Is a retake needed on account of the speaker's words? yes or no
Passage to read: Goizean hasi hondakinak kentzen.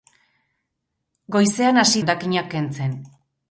no